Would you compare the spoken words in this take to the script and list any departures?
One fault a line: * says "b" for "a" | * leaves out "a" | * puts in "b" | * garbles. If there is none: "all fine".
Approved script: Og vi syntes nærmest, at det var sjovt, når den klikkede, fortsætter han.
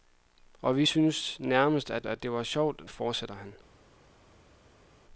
* puts in "at"
* leaves out "når den klikkede"